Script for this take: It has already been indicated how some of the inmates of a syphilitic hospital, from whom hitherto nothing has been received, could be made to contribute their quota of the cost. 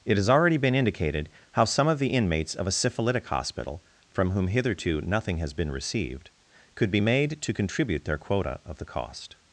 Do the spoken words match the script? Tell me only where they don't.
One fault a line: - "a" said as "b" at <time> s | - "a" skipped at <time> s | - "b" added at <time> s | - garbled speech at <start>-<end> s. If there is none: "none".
none